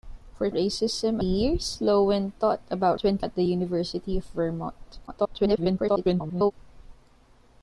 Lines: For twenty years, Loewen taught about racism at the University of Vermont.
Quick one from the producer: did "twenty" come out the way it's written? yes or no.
no